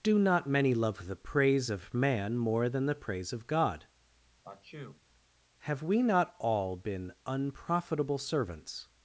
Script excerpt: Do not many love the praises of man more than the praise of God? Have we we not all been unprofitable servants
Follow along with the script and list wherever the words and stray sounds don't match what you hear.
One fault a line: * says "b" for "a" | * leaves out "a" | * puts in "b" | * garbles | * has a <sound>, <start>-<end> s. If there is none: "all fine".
* says "praise" for "praises"
* has a sneeze, 4.4-5.0 s
* leaves out "we"